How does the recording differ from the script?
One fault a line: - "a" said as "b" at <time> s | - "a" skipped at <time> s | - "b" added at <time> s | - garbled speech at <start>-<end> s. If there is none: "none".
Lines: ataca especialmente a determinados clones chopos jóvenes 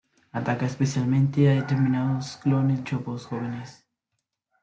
none